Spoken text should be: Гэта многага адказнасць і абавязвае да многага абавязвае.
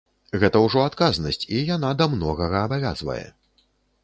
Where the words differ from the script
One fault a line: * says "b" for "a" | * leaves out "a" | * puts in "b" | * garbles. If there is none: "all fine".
* says "ўжо" for "многага"
* says "яна" for "абавязвае"